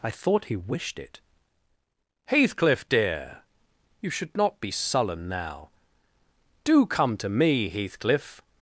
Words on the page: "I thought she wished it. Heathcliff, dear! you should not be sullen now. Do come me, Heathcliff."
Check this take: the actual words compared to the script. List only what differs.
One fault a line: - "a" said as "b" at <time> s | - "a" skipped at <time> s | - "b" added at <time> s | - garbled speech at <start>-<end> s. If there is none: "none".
- "she" said as "he" at 0.5 s
- "to" added at 7.2 s